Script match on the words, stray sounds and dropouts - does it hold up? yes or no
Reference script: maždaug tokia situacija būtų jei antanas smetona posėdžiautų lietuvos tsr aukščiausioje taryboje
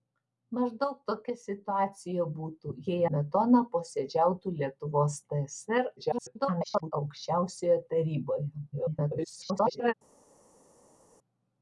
no